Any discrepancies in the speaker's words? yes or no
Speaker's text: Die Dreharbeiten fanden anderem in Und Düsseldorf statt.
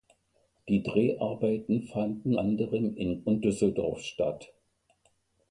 no